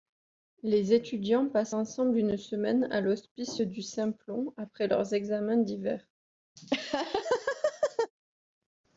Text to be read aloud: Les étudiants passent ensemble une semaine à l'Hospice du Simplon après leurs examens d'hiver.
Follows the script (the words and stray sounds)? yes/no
no